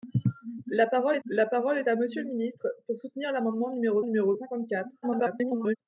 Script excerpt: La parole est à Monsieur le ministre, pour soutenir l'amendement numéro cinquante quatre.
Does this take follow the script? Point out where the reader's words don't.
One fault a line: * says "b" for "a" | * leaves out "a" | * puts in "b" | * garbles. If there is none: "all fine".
* puts in "la parole est"
* puts in "numéro"
* garbles